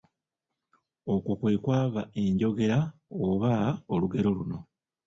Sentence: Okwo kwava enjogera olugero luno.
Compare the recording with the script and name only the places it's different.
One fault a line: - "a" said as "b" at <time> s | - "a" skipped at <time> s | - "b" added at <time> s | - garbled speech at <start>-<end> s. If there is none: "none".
- "kwe" added at 1.4 s
- "oba" added at 3.3 s